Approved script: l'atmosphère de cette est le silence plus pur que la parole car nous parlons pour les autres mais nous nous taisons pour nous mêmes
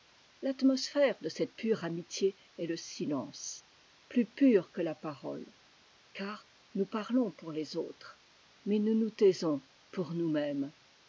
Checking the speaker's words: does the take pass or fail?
fail